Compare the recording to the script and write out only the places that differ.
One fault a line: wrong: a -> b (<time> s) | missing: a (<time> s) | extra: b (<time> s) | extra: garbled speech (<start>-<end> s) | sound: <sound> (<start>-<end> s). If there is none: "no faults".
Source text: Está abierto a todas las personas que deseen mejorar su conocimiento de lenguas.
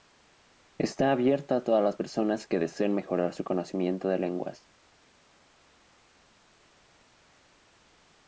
no faults